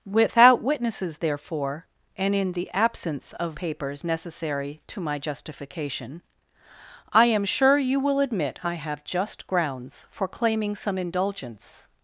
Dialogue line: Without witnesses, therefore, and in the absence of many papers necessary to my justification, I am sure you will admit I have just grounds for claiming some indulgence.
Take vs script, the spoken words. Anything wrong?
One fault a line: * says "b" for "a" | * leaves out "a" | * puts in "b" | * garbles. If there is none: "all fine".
* leaves out "many"